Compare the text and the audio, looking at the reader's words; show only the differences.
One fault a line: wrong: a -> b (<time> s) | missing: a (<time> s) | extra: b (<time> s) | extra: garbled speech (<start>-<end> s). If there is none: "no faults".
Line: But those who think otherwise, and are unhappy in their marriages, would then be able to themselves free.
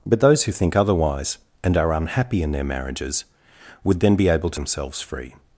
no faults